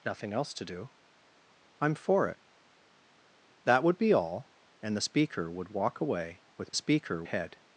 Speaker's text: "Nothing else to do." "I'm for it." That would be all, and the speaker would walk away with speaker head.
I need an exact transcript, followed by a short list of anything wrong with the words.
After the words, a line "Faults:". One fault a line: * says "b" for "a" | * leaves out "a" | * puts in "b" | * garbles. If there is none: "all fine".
"Nothing else to do." "I'm for it." That would be all, and the speaker would walk away with speaker head.
Faults:
all fine